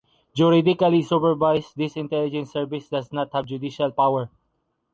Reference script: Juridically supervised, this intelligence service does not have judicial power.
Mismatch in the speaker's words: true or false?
false